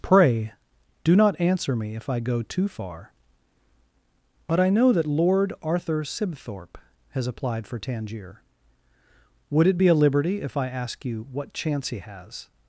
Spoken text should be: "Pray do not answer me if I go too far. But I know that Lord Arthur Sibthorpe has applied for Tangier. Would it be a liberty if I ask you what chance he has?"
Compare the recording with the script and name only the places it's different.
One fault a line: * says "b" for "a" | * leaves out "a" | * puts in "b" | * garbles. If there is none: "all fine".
all fine